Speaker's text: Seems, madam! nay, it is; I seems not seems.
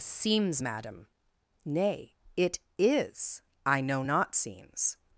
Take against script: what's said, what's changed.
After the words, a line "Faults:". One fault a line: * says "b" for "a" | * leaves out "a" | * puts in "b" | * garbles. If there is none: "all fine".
Seems, madam! nay, it is; I know not seems.
Faults:
* says "know" for "seems"